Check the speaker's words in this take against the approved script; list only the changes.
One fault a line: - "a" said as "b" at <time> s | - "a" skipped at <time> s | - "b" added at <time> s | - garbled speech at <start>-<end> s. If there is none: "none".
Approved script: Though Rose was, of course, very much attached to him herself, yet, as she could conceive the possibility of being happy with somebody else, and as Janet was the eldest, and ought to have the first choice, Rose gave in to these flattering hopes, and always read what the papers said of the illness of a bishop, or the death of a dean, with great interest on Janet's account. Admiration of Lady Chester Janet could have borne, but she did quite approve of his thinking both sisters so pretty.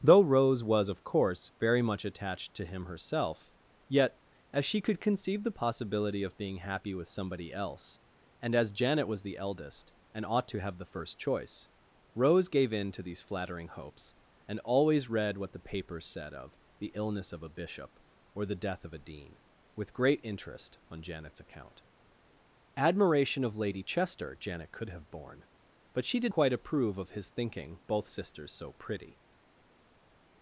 none